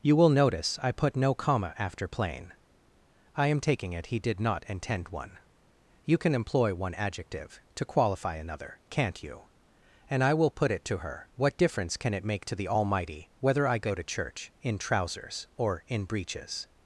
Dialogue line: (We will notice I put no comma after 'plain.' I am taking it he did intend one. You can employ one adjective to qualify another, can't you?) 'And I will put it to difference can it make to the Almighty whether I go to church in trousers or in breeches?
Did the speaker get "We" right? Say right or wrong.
wrong